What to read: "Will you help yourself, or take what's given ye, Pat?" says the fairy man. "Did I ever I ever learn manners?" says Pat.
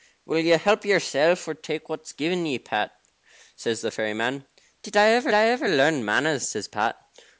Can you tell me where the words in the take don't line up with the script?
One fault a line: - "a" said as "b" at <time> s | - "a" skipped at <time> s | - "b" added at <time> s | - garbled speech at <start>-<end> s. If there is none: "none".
none